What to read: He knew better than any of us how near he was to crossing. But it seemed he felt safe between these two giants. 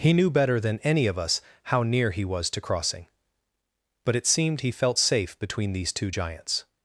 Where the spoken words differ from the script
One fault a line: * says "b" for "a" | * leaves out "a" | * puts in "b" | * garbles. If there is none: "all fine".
all fine